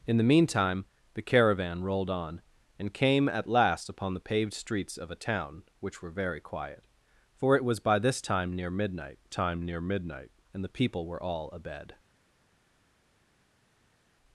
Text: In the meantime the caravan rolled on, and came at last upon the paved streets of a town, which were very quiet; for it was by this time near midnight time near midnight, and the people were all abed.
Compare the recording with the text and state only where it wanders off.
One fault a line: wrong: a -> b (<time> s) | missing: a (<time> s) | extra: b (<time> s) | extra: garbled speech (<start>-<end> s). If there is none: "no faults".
no faults